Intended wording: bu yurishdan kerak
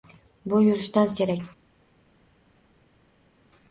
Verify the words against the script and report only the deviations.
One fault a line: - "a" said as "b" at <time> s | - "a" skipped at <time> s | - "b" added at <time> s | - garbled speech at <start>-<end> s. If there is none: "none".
none